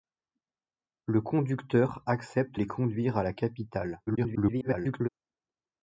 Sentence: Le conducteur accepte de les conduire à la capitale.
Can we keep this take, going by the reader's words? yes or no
no